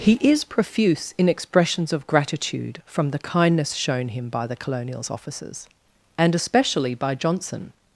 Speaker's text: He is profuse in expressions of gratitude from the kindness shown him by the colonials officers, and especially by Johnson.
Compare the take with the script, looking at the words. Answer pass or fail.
pass